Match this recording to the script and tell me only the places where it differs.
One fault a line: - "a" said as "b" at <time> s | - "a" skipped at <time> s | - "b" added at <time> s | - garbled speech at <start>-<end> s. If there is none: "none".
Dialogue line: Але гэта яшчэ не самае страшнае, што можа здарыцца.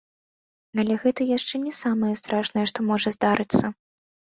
none